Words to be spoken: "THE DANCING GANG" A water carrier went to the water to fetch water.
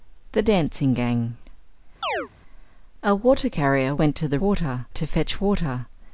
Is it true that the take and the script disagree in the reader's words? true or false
false